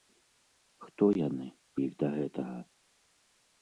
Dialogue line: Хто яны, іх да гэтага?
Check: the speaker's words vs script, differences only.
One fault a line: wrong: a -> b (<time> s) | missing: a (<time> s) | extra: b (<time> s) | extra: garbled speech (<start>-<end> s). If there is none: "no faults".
no faults